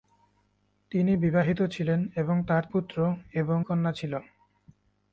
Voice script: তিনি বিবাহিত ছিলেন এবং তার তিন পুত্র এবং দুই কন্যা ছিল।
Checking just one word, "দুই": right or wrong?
wrong